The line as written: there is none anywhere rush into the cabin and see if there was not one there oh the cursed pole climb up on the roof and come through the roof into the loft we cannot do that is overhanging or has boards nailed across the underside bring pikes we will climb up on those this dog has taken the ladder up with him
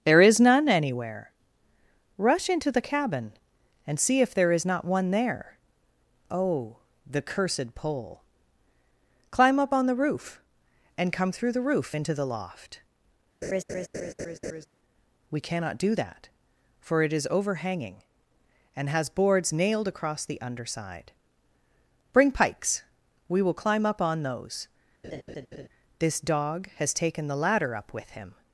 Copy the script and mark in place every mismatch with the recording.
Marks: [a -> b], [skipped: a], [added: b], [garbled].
there is none anywhere rush into the cabin and see if there [was -> is] not one there oh the cursed pole climb up on the roof and come through the roof into the loft we cannot do that [added: for it] is overhanging [or -> and] has boards nailed across the underside bring pikes we will climb up on those this dog has taken the ladder up with him